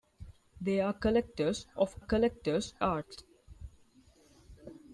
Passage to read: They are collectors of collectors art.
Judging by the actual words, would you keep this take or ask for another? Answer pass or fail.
pass